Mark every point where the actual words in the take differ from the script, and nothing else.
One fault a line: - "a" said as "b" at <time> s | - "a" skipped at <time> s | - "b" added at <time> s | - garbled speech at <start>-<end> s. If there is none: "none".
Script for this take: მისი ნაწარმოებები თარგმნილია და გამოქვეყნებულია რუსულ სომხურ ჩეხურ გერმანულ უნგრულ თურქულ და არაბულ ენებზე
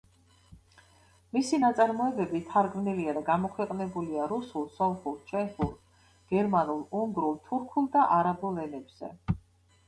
none